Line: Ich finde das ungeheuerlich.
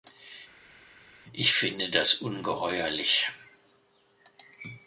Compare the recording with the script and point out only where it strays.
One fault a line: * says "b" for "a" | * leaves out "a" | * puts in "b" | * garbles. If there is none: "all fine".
all fine